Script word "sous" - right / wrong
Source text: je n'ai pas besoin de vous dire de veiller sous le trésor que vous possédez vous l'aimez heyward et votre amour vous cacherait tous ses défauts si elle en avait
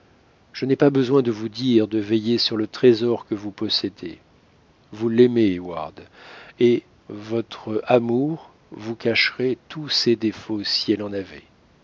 wrong